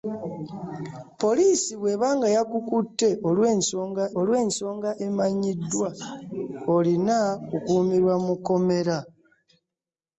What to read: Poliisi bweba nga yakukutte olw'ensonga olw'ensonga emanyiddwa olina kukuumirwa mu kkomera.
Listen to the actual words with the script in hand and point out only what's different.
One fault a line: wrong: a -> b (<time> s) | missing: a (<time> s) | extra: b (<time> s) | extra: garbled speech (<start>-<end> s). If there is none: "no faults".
no faults